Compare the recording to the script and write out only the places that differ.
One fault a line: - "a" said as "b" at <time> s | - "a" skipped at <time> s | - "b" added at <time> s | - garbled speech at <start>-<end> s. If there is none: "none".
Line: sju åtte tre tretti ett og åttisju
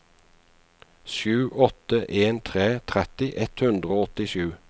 - "en" added at 2.2 s
- "hundre" added at 3.6 s